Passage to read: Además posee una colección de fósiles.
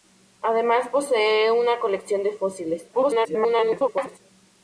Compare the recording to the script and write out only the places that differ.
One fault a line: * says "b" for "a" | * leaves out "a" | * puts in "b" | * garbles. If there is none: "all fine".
* garbles